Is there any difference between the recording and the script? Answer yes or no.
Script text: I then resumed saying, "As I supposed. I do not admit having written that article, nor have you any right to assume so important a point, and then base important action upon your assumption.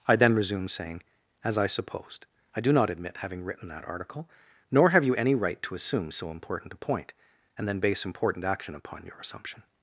no